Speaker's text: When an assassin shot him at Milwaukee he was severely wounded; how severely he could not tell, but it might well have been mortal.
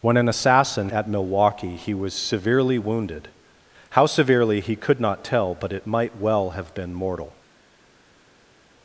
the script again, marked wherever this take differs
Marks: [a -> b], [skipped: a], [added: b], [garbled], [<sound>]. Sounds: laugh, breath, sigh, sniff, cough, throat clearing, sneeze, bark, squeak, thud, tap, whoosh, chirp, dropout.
When an assassin [skipped: shot him] at Milwaukee he was severely wounded; how severely he could not tell, but it might well have been mortal.